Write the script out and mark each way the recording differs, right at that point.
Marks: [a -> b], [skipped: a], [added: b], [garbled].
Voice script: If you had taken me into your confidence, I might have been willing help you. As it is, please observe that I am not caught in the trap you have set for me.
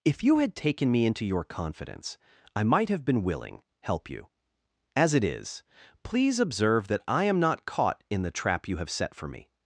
If you had taken me into your confidence, I might have been willing help you. As it is, please observe that I am not caught in the trap you have set for me.